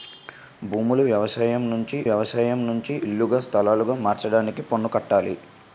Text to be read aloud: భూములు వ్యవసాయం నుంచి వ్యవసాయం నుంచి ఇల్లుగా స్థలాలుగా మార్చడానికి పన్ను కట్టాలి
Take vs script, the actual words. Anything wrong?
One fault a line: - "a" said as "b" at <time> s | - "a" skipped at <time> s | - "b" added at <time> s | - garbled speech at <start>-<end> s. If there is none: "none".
none